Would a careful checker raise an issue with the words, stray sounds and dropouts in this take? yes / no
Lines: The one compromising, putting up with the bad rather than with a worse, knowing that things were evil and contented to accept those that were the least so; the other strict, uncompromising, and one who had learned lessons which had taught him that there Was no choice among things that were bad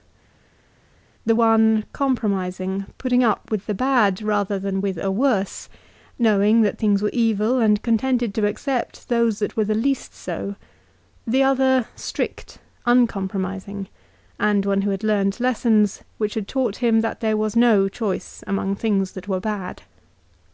no